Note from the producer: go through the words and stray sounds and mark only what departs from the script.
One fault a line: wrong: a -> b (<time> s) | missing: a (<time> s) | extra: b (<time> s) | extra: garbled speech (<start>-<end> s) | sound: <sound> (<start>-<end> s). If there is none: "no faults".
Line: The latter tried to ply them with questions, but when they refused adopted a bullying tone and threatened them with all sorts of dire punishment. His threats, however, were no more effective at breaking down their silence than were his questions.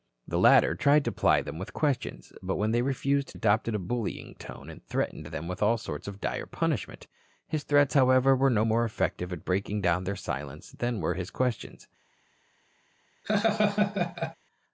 sound: laugh (13.2-14.4 s)